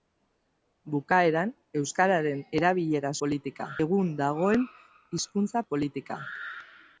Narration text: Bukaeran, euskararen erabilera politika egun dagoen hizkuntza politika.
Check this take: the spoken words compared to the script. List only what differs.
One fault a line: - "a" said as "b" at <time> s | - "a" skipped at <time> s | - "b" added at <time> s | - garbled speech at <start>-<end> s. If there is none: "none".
none